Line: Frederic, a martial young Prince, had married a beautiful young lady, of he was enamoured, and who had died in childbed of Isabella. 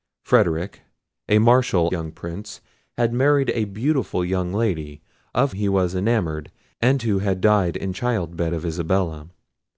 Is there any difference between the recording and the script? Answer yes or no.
no